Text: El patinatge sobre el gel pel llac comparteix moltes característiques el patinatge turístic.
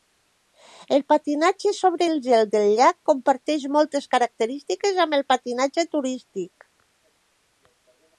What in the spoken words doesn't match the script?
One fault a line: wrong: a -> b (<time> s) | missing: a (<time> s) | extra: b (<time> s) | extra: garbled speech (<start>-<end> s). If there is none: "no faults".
wrong: pel -> del (2.5 s)
extra: amb (5.1 s)